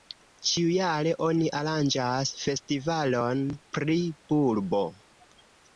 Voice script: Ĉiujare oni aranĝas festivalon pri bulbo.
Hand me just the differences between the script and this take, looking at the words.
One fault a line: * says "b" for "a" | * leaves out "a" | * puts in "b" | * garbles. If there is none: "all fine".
all fine